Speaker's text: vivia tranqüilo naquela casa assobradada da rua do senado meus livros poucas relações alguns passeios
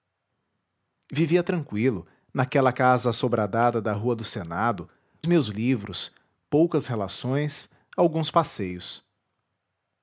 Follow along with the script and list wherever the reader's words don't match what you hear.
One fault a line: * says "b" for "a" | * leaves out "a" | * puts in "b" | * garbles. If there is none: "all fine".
all fine